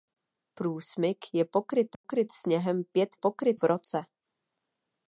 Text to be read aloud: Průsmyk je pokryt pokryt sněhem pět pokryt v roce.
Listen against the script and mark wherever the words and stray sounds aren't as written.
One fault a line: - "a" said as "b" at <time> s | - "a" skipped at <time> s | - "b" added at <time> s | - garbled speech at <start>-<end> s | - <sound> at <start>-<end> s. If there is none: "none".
- dropout at 1.9-2.0 s